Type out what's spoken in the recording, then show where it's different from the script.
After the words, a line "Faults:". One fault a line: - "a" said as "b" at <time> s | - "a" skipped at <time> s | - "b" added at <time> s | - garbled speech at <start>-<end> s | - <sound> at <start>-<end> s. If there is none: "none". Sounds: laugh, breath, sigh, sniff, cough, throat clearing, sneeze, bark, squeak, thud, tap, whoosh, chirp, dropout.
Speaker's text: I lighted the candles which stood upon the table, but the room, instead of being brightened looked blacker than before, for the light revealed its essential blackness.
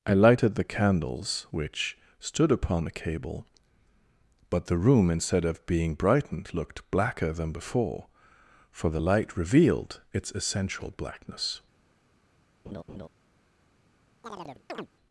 I lighted the candles which stood upon the cable, but the room, instead of being brightened looked blacker than before, for the light revealed its essential blackness.
Faults:
- "table" said as "cable" at 2.9 s
- laugh at 12.6-13.1 s
- chirp at 14.2-14.9 s